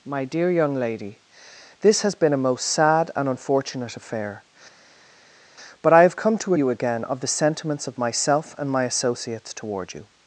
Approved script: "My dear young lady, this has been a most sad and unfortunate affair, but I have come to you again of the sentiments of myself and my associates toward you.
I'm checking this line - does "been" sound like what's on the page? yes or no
yes